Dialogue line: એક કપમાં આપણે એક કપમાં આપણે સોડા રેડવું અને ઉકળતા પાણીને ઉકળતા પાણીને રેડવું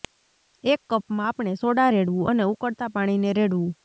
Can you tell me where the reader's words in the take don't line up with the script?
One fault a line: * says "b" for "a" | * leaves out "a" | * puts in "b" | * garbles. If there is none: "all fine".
* leaves out "એક કપમાં આપણે"
* leaves out "ઉકળતા પાણીને"